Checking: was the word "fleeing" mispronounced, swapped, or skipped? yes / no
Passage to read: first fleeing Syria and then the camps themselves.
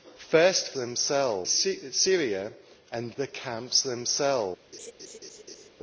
yes